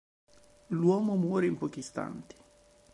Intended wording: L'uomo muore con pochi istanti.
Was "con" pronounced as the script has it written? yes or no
no